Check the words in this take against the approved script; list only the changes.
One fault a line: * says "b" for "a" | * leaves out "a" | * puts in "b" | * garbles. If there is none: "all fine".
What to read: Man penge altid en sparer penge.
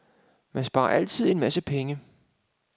* says "sparer" for "penge"
* says "masse" for "sparer"